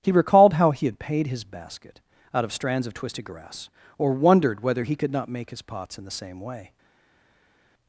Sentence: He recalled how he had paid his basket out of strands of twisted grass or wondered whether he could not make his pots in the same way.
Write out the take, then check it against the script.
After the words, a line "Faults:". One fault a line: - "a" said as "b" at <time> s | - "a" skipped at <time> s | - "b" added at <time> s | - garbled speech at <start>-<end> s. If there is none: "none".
He recalled how he had paid his basket out of strands of twisted grass or wondered whether he could not make his pots in the same way.
Faults:
none